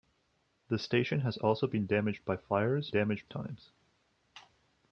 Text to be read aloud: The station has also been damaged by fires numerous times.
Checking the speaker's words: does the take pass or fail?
fail